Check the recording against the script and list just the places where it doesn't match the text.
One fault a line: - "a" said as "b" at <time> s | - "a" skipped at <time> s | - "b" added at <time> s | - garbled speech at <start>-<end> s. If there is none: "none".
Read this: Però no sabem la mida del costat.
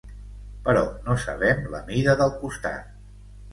none